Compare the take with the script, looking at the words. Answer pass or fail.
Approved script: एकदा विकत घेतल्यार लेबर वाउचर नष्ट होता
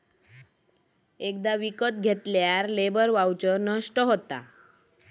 pass